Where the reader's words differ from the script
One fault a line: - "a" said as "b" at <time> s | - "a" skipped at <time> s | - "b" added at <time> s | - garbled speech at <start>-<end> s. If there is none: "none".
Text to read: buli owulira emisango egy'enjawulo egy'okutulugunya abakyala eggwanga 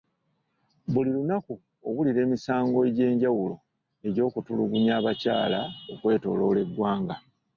- "lunaku" added at 1.2 s
- "okwetooloola" added at 5.9 s